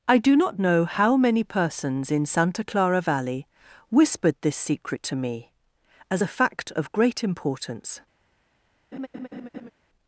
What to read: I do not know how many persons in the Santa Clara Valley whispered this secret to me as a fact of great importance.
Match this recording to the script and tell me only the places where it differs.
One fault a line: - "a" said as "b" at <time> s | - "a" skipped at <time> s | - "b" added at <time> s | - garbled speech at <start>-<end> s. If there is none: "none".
- "the" skipped at 2.2 s